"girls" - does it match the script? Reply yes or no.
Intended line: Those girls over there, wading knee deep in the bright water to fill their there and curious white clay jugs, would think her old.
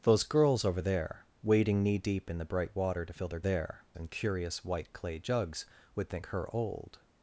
yes